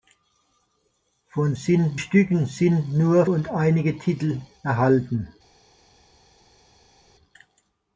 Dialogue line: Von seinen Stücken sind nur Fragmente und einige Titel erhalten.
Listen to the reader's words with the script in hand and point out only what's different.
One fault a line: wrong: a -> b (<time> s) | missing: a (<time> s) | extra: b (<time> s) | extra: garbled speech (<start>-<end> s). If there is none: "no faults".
wrong: seinen -> sind (1.5 s)
missing: Fragmente (3.2 s)